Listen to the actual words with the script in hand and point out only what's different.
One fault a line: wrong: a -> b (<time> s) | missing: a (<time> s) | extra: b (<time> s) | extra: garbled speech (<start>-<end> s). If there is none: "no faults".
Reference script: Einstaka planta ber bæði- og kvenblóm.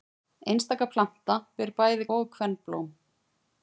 no faults